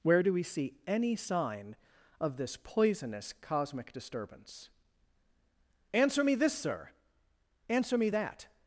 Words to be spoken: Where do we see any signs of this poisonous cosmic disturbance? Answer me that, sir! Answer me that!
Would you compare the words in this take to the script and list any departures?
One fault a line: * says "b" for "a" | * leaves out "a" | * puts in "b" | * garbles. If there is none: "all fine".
* says "sign" for "signs"
* says "this" for "that"